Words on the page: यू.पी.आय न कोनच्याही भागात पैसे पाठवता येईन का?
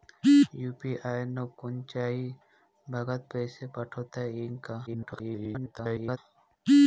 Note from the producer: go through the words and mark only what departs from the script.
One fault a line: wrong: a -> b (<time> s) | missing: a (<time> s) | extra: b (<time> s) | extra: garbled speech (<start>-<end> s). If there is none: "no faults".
extra: garbled speech (4.9-6.2 s)